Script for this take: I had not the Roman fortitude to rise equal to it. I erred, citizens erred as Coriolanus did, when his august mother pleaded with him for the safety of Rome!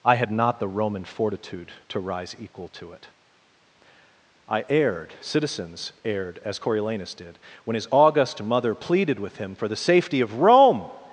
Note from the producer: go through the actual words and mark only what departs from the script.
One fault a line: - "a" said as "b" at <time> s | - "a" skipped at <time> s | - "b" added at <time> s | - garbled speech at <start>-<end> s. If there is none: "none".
none